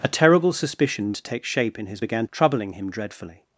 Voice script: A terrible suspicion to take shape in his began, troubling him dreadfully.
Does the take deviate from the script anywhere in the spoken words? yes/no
no